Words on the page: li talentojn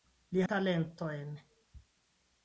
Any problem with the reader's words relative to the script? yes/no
no